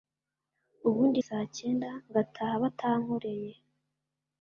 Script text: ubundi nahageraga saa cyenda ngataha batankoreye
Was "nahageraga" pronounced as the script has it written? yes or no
no